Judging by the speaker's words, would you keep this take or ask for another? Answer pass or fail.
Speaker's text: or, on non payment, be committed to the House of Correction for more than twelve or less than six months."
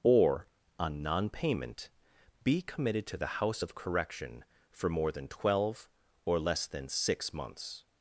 pass